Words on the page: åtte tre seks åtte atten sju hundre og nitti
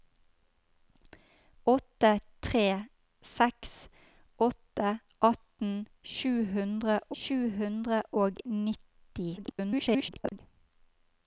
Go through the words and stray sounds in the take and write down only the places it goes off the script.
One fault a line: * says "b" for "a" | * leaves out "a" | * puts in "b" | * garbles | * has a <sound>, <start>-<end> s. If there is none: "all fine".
* puts in "sju hundre"
* garbles